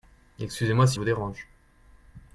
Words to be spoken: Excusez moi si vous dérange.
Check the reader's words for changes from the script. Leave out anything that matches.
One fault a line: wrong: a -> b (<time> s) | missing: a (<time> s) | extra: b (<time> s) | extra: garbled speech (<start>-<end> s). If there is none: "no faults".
no faults